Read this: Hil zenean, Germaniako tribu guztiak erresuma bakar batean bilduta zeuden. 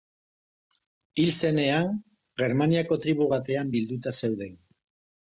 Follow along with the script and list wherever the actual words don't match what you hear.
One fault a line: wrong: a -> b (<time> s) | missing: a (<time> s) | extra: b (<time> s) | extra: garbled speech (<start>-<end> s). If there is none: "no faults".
missing: guztiak erresuma bakar (3.3 s)